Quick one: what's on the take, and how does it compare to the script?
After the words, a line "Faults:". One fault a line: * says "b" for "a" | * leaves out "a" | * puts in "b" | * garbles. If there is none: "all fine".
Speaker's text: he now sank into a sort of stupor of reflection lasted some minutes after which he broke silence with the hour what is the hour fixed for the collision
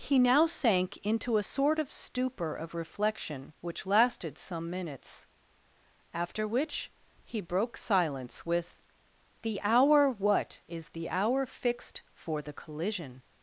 he now sank into a sort of stupor of reflection which lasted some minutes after which he broke silence with the hour what is the hour fixed for the collision
Faults:
* puts in "which"